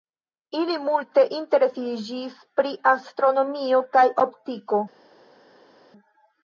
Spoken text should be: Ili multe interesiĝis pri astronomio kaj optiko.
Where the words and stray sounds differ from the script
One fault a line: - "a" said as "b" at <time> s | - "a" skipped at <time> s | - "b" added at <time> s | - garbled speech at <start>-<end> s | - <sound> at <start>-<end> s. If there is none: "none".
none